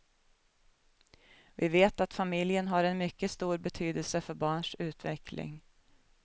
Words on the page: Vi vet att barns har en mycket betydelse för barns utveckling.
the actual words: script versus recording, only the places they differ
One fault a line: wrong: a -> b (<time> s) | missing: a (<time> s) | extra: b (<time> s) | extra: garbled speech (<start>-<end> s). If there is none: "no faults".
wrong: barns -> familjen (2.1 s)
extra: stor (3.3 s)